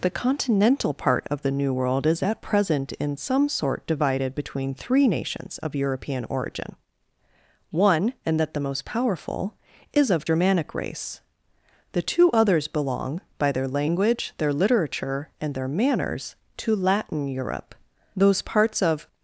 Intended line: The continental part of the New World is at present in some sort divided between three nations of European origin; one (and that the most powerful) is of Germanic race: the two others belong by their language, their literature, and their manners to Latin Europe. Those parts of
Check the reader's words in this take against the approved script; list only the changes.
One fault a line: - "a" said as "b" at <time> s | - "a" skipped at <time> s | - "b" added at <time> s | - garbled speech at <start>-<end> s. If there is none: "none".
none